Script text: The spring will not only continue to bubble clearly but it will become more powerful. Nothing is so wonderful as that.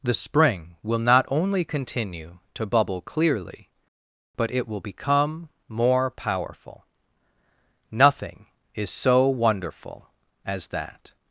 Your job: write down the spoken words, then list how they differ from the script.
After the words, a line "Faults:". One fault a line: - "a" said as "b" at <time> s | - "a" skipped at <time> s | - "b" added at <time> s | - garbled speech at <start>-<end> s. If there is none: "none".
The spring will not only continue to bubble clearly but it will become more powerful. Nothing is so wonderful as that.
Faults:
none